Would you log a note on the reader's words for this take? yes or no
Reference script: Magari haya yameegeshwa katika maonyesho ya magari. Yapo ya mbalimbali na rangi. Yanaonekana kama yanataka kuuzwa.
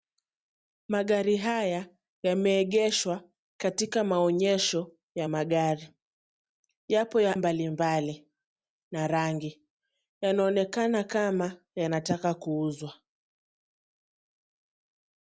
no